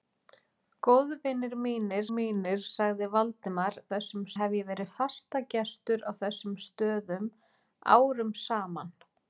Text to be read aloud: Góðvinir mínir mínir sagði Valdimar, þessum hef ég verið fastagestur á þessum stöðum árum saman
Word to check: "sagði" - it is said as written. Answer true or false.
true